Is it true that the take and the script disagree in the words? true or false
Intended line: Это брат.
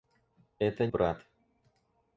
false